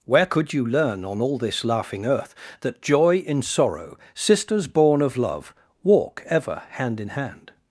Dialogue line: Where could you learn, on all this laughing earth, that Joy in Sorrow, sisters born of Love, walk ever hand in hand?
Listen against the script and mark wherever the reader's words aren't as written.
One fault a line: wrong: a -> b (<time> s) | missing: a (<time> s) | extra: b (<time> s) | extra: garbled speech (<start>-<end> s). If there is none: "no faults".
no faults